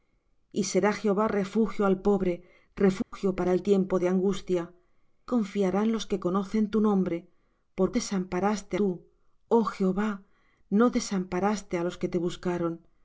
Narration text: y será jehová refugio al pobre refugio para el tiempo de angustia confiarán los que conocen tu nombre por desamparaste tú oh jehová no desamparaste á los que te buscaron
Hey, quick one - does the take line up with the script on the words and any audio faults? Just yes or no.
no